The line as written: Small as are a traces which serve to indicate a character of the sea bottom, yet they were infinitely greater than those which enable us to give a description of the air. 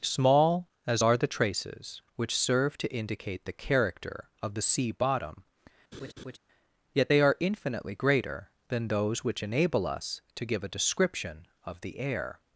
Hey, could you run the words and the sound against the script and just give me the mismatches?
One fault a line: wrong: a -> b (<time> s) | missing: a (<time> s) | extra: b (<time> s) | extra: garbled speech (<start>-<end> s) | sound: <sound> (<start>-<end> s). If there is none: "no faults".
wrong: a -> the (1.2 s)
wrong: a -> the (3.5 s)
sound: laugh (5.9-6.4 s)
wrong: were -> are (7.2 s)